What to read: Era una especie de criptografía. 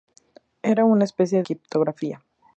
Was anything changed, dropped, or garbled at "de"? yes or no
yes